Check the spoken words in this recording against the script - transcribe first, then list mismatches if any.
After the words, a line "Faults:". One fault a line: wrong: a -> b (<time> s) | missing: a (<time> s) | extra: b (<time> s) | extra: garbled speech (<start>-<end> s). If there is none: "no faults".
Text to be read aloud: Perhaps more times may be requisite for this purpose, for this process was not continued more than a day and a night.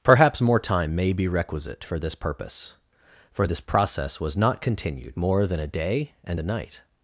Perhaps more time may be requisite for this purpose, for this process was not continued more than a day and a night.
Faults:
wrong: times -> time (0.6 s)